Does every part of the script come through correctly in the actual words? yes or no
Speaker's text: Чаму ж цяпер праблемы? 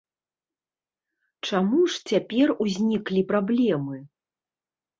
no